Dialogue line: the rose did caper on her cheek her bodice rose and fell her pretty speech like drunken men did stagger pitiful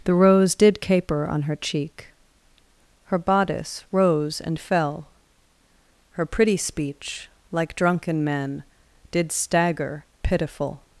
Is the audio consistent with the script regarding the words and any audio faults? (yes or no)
yes